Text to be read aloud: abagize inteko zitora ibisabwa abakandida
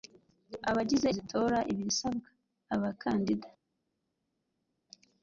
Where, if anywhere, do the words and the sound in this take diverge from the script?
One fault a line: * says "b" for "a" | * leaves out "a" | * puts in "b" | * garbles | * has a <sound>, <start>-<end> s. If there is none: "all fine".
* leaves out "inteko"